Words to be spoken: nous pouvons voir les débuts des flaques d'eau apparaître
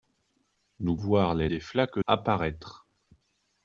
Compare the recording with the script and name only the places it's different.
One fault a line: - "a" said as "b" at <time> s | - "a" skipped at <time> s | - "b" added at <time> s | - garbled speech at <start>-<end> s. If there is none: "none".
- "pouvons" skipped at 1.0 s
- "débuts" skipped at 1.5 s
- "d'eau" skipped at 2.0 s